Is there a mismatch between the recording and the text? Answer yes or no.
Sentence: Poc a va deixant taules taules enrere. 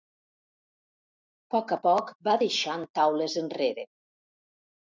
yes